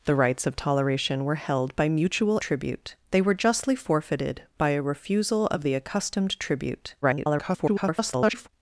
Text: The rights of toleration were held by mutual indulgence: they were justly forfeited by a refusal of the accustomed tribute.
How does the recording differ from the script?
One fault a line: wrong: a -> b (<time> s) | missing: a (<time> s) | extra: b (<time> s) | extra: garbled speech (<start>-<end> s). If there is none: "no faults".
wrong: indulgence -> tribute (2.4 s)
extra: garbled speech (7.0-8.5 s)